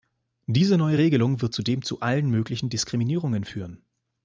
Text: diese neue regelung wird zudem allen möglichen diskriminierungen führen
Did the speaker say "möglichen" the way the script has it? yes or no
yes